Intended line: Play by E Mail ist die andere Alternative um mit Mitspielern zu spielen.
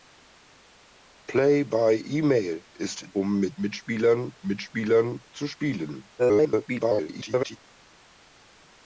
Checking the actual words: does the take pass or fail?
fail